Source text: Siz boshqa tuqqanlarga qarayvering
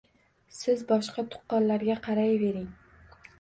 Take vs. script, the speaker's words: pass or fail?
pass